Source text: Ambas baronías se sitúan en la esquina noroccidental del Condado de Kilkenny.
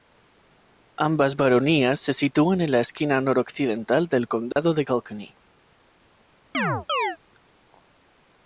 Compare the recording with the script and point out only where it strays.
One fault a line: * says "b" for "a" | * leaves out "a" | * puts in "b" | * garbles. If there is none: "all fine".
all fine